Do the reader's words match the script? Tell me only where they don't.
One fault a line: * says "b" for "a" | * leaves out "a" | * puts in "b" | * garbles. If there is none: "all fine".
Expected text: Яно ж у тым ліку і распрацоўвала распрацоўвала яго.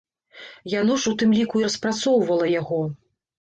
* leaves out "распрацоўвала"